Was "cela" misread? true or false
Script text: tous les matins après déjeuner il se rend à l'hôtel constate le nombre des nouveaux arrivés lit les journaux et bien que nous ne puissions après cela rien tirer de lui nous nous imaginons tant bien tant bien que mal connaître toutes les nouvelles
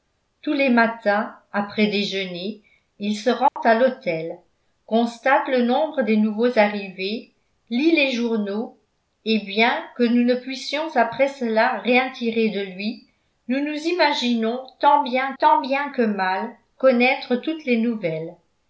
false